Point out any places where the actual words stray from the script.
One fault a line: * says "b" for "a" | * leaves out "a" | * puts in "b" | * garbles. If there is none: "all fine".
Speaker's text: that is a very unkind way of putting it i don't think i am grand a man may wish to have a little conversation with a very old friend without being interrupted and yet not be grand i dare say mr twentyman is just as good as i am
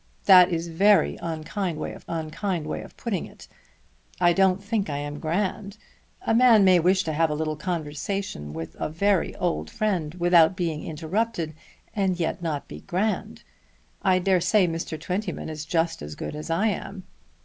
* puts in "unkind way of"